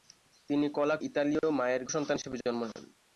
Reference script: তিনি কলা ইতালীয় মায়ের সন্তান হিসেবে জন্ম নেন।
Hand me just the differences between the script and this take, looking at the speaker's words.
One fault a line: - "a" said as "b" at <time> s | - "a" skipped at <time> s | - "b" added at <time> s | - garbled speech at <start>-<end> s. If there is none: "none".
none